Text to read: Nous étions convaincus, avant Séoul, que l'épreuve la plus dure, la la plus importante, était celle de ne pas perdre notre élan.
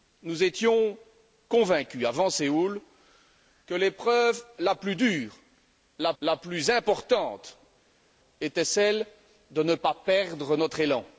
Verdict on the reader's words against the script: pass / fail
pass